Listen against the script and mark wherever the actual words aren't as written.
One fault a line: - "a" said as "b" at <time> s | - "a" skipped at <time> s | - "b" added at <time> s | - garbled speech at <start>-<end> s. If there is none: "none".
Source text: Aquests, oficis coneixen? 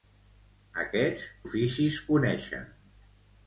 none